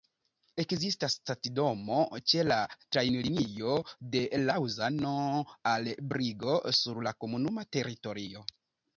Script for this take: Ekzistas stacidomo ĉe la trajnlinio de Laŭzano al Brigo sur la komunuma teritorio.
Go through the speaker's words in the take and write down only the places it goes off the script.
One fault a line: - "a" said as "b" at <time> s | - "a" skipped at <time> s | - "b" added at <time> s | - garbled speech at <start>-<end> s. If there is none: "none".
none